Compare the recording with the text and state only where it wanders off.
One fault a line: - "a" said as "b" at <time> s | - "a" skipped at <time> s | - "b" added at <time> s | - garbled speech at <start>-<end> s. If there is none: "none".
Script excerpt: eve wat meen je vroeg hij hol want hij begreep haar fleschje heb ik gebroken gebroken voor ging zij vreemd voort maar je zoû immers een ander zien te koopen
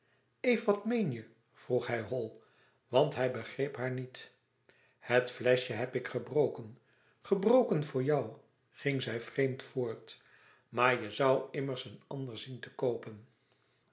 - "niet het" added at 3.9 s
- "jou" added at 8.0 s